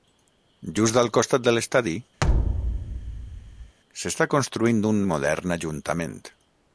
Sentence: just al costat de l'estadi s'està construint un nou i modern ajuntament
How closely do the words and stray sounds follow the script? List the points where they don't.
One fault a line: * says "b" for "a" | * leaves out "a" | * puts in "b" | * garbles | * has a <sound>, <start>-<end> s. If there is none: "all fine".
* has a thud, 2.2-3.7 s
* leaves out "nou"